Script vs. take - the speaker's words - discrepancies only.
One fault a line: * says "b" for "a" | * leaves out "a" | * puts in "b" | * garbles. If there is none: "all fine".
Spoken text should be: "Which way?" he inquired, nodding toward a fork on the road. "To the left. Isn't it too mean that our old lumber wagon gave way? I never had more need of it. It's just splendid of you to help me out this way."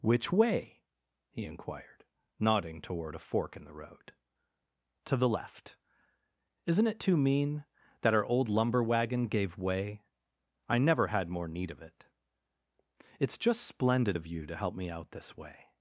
* says "in" for "on"